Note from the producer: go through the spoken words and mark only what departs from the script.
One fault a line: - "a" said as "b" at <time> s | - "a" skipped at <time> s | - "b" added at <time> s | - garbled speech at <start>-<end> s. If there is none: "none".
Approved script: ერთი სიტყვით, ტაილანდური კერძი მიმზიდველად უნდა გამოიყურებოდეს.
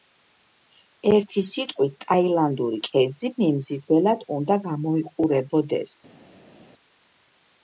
none